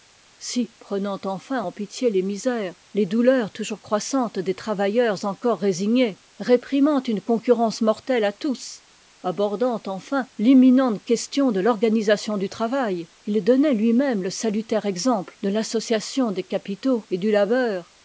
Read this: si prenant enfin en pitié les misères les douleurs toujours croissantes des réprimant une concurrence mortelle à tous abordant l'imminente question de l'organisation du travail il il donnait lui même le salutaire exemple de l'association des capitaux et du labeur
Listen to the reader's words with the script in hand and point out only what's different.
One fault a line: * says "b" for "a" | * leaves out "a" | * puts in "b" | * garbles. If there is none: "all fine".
* puts in "travailleurs encore résignés"
* puts in "enfin"
* leaves out "il"